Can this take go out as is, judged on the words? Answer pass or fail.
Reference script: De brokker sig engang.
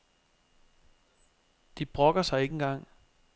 fail